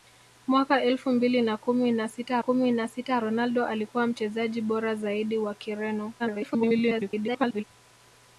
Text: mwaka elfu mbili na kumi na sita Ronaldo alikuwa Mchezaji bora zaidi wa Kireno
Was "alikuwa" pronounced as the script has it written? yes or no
yes